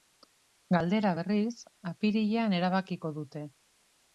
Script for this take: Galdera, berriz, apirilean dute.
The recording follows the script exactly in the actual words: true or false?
false